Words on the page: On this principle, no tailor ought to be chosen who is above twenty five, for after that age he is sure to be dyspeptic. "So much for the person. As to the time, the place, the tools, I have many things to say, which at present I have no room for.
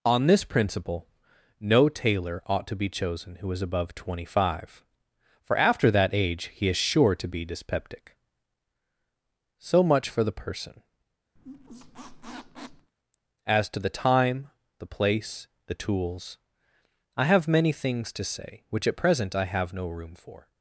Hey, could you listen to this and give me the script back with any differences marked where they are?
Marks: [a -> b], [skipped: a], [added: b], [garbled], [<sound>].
On this principle, no tailor ought to be chosen who is above twenty five, for after that age he is sure to be dyspeptic. "So much for the person. [squeak] As to the time, the place, the tools, I have many things to say, which at present I have no room for.